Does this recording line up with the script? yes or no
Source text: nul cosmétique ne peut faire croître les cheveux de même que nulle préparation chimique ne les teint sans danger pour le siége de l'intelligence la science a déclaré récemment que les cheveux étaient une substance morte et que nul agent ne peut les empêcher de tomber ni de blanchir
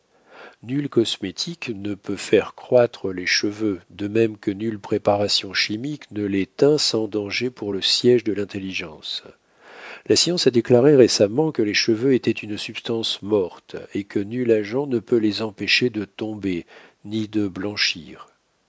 yes